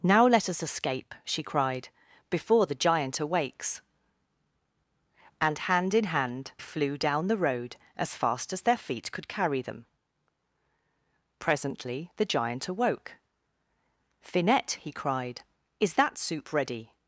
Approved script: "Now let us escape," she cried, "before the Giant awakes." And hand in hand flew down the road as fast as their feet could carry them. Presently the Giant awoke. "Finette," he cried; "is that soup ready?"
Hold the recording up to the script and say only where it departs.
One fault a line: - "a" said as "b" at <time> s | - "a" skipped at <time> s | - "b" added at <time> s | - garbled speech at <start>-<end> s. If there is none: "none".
none